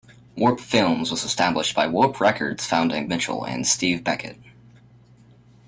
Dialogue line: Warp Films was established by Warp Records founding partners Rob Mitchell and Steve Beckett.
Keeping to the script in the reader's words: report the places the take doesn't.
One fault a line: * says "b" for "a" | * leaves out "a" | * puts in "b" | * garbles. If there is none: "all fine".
* leaves out "partners Rob"